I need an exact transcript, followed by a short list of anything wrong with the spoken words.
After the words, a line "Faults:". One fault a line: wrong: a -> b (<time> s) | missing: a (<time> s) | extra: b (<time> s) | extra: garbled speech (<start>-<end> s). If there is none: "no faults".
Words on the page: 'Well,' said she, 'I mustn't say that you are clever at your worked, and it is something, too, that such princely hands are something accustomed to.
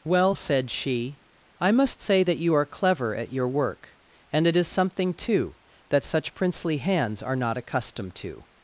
'Well,' said she, 'I must say that you are clever at your work, and it is something, too, that such princely hands are not accustomed to.
Faults:
wrong: mustn't -> must (1.7 s)
wrong: worked -> work (3.5 s)
wrong: something -> not (7.4 s)